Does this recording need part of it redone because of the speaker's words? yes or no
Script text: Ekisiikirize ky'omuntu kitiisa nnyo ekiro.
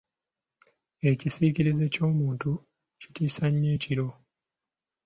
no